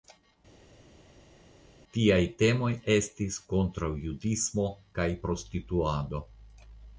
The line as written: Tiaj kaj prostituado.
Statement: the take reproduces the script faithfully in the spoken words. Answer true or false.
false